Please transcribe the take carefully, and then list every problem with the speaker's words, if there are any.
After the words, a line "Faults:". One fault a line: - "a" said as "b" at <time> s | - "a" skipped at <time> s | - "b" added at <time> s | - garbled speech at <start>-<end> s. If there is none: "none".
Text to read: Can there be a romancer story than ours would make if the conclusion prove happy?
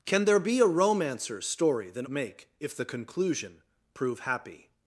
Can there be a romancer story than make if the conclusion prove happy?
Faults:
- "ours would" skipped at 2.1 s